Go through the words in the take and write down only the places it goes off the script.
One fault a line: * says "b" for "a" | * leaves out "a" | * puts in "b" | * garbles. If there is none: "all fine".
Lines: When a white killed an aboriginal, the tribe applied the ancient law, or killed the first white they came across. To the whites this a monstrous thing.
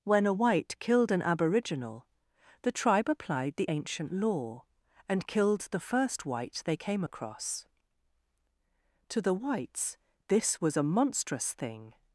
* says "and" for "or"
* puts in "was"